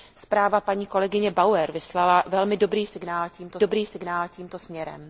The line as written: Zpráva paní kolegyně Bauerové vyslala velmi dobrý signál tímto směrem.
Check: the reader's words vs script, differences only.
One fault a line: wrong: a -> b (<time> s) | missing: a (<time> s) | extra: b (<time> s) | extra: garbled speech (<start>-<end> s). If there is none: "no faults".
extra: dobrý signál tímto (3.6 s)